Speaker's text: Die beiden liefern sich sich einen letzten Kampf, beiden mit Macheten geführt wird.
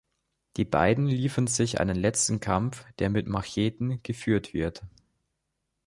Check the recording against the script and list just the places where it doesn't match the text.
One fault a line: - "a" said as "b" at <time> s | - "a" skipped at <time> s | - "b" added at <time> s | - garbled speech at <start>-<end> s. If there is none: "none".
- "sich" skipped at 1.8 s
- "beiden" said as "der" at 3.0 s